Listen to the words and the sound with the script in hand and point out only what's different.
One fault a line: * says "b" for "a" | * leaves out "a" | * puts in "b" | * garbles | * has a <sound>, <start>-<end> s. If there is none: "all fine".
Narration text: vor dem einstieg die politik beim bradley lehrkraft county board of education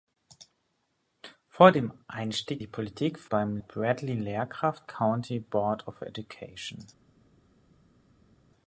all fine